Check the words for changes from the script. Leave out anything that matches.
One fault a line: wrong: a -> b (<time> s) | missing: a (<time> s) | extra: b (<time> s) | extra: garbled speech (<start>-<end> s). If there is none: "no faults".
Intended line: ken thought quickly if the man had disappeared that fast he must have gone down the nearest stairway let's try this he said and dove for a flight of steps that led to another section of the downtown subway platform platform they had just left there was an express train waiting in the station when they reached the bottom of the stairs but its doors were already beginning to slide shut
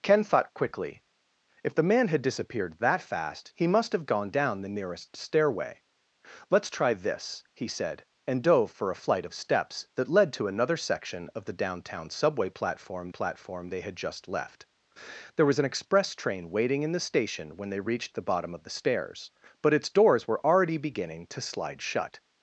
no faults